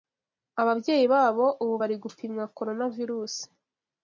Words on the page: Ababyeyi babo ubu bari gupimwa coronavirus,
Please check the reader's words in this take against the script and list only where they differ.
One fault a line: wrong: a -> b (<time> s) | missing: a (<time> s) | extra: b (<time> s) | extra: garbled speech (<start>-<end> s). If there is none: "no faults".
no faults